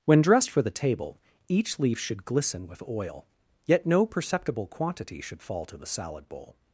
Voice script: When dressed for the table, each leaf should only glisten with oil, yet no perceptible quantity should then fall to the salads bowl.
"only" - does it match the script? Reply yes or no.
no